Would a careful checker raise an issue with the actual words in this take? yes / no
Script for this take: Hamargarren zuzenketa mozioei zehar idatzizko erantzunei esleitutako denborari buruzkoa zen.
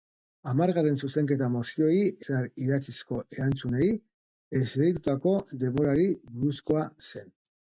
no